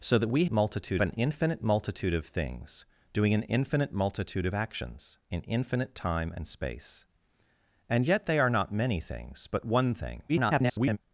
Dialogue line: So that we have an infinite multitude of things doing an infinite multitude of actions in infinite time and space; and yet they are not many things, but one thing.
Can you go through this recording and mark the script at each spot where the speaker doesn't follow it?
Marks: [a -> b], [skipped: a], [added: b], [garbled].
So that we [have -> multitude] an infinite multitude of things doing an infinite multitude of actions in infinite time and space; and yet they are not many things, but one thing. [garbled]